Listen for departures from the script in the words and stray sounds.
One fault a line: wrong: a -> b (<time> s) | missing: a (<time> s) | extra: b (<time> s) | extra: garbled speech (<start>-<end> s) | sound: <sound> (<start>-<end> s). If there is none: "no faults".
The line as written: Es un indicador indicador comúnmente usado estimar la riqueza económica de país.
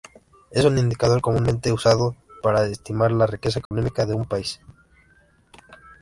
missing: indicador (1.2 s)
extra: para (2.4 s)
sound: dropout (3.7-3.7 s)
extra: un (4.1 s)